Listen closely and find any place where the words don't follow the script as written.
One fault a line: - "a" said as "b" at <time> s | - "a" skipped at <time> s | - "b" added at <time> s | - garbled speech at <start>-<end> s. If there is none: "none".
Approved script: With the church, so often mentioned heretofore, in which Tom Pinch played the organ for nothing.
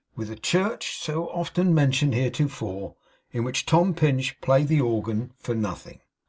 none